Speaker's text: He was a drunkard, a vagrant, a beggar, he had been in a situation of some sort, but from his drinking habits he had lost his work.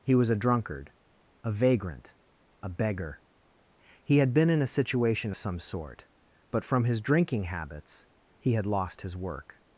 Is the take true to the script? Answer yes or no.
no